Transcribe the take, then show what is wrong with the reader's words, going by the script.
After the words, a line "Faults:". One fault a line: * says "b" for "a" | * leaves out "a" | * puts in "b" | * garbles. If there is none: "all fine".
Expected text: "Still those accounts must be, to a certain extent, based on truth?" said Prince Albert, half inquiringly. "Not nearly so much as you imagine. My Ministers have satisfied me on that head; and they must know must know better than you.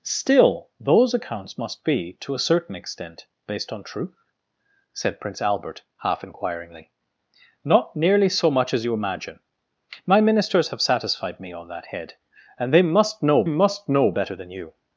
"Still those accounts must be, to a certain extent, based on truth?" said Prince Albert, half inquiringly. "Not nearly so much as you imagine. My Ministers have satisfied me on that head; and they must know must know better than you.
Faults:
all fine